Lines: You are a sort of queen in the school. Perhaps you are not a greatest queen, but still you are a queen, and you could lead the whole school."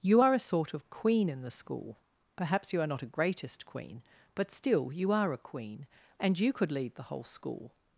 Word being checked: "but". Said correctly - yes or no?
yes